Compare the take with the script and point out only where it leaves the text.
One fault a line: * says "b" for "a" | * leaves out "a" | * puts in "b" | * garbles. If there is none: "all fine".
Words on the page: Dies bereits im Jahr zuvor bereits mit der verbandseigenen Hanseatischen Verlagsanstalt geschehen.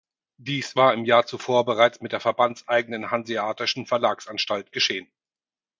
* says "war" for "bereits"